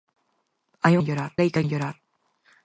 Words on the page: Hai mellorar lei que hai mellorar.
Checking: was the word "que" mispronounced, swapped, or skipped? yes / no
no